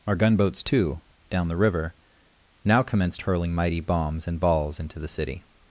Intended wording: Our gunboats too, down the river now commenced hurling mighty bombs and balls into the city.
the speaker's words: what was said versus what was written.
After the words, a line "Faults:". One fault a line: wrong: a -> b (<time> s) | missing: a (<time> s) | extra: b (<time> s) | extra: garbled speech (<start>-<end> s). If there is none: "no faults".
Our gunboats too, down the river now commenced hurling mighty bombs and balls into the city.
Faults:
no faults